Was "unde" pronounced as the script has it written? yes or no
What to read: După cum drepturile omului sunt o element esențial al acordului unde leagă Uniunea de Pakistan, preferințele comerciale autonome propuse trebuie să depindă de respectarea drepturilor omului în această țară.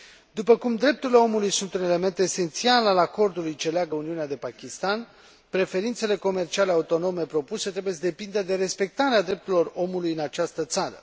no